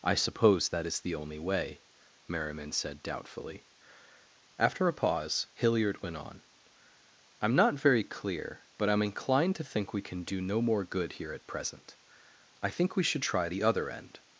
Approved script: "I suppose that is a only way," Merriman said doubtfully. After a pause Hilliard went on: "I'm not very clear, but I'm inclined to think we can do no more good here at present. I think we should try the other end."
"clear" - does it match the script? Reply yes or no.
yes